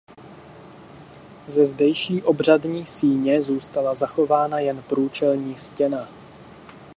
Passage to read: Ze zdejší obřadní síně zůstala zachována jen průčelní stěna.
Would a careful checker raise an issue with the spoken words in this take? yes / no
no